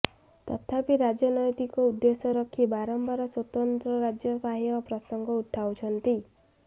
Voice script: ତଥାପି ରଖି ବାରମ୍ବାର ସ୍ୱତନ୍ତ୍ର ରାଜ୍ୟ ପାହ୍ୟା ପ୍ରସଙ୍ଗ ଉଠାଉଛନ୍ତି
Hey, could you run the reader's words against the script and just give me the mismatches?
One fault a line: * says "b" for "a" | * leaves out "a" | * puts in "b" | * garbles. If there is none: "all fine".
* puts in "ରାଜନୈତିକ ଉଦ୍ଦେଶ୍ୟ"